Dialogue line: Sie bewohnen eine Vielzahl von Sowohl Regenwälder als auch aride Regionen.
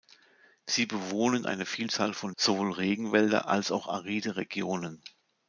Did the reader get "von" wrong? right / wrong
right